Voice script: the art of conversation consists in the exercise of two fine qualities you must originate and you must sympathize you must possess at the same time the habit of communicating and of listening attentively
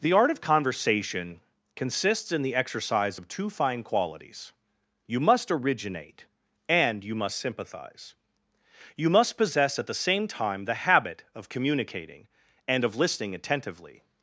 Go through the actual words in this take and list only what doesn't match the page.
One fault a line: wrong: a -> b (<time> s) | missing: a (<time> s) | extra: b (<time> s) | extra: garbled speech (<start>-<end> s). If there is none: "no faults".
no faults